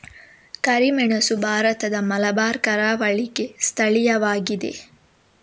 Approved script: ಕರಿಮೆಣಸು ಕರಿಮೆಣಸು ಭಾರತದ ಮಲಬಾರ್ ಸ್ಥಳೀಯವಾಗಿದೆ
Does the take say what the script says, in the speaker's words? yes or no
no